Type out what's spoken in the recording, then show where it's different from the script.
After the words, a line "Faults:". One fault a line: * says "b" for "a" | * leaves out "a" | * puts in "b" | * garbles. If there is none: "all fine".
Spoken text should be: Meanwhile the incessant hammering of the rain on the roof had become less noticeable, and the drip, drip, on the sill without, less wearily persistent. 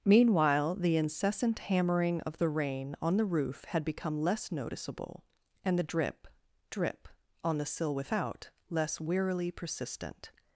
Meanwhile the incessant hammering of the rain on the roof had become less noticeable, and the drip, drip, on the sill without, less wearily persistent.
Faults:
all fine